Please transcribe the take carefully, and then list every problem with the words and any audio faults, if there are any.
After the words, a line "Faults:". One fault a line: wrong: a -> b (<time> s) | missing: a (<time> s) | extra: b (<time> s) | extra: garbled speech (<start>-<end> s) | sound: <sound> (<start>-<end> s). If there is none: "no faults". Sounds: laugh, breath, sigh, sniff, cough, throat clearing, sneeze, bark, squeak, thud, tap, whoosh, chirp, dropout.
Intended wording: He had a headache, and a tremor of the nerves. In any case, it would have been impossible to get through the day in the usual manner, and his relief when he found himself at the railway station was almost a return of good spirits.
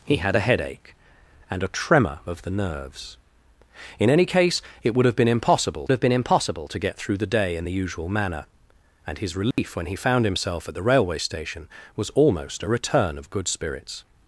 He had a headache, and a tremor of the nerves. In any case, it would have been impossible have been impossible to get through the day in the usual manner, and his relief when he found himself at the railway station was almost a return of good spirits.
Faults:
extra: have been impossible (5.9 s)
sound: dropout (9.5-9.6 s)